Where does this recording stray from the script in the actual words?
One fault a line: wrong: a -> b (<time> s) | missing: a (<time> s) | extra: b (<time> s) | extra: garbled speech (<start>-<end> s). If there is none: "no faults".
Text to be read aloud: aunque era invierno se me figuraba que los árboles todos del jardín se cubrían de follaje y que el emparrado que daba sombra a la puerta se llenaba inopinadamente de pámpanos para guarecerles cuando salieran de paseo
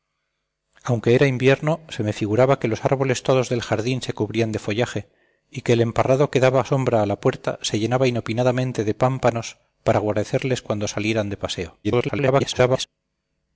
extra: garbled speech (11.8-12.9 s)